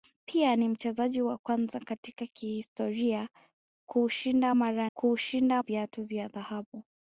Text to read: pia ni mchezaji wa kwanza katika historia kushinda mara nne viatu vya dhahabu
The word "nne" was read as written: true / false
false